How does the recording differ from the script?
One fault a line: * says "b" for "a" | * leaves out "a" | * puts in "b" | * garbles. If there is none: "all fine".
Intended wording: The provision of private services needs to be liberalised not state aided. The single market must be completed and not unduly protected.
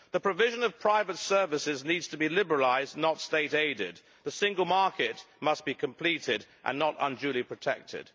all fine